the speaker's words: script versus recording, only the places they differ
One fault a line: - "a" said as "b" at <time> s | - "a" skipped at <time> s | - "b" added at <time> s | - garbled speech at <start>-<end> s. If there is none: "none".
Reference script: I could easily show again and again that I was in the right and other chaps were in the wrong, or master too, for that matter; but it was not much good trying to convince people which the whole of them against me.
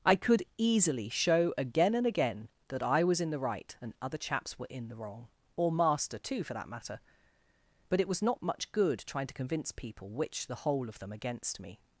none